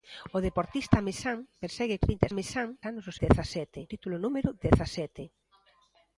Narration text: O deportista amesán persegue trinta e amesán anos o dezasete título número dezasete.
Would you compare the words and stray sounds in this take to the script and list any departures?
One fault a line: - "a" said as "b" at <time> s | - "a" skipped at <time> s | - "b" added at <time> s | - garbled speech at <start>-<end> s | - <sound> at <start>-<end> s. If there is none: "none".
none